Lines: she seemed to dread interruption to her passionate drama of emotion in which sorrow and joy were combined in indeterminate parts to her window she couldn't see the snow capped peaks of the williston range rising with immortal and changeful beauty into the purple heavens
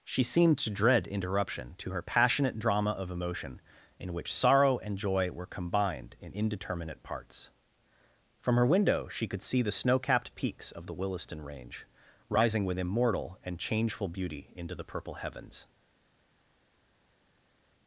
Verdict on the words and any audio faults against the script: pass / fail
fail